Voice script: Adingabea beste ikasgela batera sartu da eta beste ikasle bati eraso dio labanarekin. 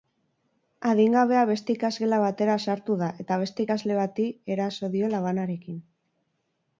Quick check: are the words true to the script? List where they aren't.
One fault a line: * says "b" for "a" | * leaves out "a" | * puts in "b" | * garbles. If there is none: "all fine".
all fine